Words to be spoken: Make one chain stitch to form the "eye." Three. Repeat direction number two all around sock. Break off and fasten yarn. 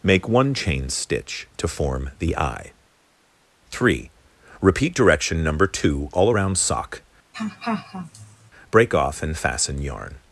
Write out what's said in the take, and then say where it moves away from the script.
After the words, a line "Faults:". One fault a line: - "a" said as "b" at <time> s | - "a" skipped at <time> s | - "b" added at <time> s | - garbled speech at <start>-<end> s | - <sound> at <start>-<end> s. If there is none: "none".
Make one chain stitch to form the "eye." Three. Repeat direction number two all around sock. Break off and fasten yarn.
Faults:
- laugh at 7.3-8.5 s